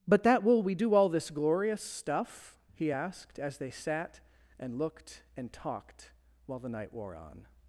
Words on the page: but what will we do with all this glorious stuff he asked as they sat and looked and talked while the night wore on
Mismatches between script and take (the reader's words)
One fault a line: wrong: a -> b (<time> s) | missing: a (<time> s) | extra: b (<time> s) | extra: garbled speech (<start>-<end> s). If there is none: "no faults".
wrong: what -> that (0.2 s)
missing: with (0.9 s)